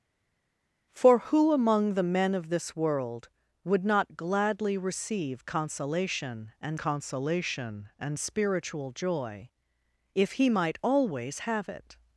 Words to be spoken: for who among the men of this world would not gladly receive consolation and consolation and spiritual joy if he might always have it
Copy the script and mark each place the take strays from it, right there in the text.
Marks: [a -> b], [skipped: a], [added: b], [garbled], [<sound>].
for who among the men of this world would not gladly receive consolation and consolation and spiritual joy if he might always have it